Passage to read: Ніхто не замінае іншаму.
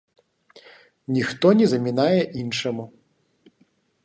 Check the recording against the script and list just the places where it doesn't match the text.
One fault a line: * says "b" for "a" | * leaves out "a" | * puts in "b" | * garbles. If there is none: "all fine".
all fine